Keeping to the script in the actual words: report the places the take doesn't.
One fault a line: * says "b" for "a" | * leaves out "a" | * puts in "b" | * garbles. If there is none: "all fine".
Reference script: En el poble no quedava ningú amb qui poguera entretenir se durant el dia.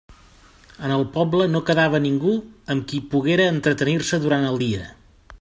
all fine